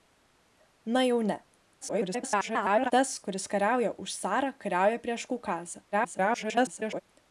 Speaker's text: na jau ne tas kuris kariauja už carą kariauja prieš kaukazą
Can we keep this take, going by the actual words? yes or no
no